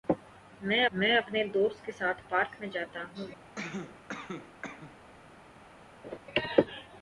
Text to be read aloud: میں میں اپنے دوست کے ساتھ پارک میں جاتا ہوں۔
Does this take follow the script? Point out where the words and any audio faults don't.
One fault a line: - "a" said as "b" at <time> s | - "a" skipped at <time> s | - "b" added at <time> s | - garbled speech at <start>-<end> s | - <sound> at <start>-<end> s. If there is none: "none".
- cough at 3.6-5.0 s
- laugh at 6.0-6.2 s